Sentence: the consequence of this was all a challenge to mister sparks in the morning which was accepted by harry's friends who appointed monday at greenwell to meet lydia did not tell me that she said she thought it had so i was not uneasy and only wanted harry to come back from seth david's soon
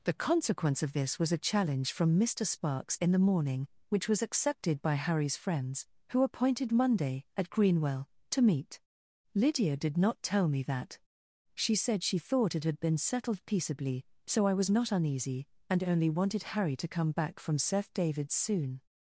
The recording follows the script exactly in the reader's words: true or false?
false